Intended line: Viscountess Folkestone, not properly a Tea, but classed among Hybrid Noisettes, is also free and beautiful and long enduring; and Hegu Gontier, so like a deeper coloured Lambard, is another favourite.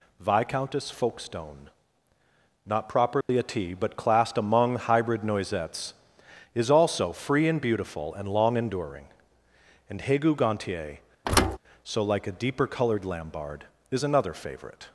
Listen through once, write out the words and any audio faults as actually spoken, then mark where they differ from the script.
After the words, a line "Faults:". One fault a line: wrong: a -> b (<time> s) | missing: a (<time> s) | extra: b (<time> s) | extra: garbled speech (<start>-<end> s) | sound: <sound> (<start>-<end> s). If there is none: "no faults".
Viscountess Folkestone, not properly a Tea, but classed among Hybrid Noisettes, is also free and beautiful and long enduring; and Hegu Gontier, so like a deeper coloured Lambard, is another favourite.
Faults:
sound: dropout (3.2-3.3 s)
sound: thud (11.2-11.6 s)